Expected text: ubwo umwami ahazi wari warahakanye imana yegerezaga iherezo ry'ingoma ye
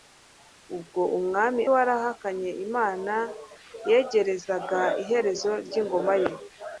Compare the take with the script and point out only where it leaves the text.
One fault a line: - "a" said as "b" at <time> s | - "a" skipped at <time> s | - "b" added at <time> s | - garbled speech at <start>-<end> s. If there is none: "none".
- "ahazi wari" skipped at 1.6 s